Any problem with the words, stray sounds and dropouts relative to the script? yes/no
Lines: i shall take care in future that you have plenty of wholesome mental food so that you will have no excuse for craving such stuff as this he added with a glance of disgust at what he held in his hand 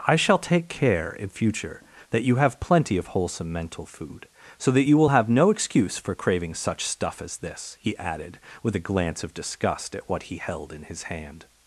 no